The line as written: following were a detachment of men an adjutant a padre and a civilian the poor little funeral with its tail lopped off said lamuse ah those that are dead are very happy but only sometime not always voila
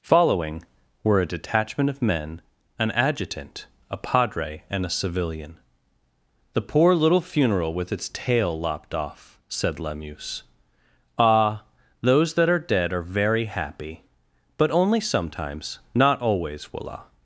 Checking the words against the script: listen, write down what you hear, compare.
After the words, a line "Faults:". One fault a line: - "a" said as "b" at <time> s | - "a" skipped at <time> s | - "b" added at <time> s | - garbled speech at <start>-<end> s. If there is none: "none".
following were a detachment of men an adjutant a padre and a civilian the poor little funeral with its tail lopped off said lamuse ah those that are dead are very happy but only sometimes not always voila
Faults:
- "sometime" said as "sometimes" at 15.0 s